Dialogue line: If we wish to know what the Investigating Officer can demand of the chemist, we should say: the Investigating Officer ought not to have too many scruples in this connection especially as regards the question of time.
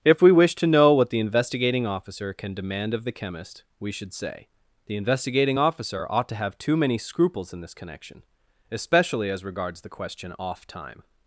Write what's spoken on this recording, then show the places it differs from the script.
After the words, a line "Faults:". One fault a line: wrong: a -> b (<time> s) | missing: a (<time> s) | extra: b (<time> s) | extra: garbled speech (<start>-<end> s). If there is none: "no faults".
If we wish to know what the Investigating Officer can demand of the chemist, we should say: the Investigating Officer ought to have too many scruples in this connection especially as regards the question off time.
Faults:
missing: not (6.3 s)
wrong: of -> off (10.4 s)